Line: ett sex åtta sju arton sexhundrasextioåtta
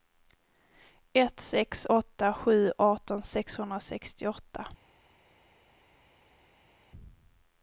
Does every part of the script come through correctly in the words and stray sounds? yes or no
yes